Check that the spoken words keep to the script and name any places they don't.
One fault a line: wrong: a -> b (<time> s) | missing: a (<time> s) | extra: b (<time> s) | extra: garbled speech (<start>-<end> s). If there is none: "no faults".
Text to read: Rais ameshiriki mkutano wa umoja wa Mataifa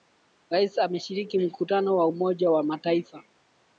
no faults